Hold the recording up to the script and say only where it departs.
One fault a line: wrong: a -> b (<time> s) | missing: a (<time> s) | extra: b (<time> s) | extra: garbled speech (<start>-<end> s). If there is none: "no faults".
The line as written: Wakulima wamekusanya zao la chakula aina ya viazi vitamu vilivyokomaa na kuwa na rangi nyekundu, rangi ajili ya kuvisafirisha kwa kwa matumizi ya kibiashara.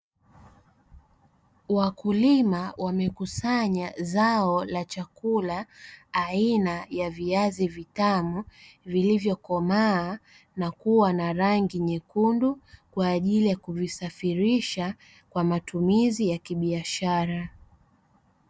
wrong: rangi -> kwa (12.9 s)
missing: kwa (15.4 s)